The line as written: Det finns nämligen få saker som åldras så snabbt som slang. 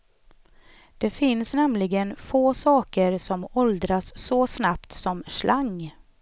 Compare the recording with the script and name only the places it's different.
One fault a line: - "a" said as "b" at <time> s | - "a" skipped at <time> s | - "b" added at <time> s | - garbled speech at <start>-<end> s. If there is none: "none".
none